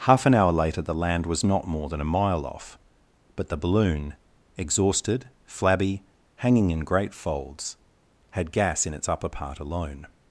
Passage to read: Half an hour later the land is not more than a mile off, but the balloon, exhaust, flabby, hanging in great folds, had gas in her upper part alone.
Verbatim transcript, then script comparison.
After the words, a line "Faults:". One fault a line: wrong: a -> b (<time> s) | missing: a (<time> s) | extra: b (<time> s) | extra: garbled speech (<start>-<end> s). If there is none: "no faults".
Half an hour later the land was not more than a mile off, but the balloon, exhausted, flabby, hanging in great folds, had gas in its upper part alone.
Faults:
wrong: is -> was (1.3 s)
wrong: exhaust -> exhausted (4.6 s)
wrong: her -> its (8.9 s)